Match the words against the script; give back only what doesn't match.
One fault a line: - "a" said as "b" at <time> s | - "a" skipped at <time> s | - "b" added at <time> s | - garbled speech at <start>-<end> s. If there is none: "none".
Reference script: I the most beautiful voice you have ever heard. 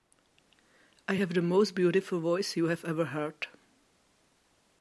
- "have" added at 1.1 s